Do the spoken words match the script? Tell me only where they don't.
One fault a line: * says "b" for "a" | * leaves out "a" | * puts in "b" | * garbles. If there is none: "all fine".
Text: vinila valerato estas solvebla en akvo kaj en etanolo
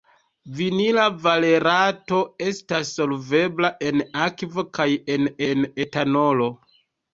* puts in "en"